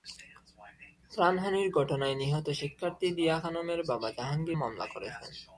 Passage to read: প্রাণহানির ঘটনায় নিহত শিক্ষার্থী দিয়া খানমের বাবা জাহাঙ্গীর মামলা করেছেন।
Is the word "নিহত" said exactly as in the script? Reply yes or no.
yes